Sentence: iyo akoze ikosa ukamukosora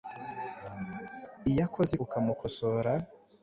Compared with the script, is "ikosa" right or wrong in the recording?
wrong